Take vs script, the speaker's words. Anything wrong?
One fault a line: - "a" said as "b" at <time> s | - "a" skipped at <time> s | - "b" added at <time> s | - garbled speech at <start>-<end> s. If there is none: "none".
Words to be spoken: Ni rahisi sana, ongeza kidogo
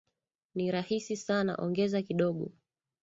none